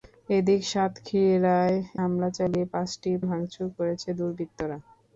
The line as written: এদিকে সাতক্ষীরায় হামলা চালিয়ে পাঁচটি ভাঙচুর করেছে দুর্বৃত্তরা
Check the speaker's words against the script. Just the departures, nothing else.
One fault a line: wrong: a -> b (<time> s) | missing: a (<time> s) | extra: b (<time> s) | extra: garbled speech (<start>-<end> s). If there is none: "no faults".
no faults